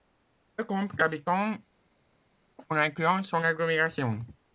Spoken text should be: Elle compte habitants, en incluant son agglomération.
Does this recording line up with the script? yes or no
yes